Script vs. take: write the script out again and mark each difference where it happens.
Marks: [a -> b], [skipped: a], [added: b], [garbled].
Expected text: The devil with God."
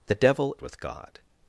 The devil with God."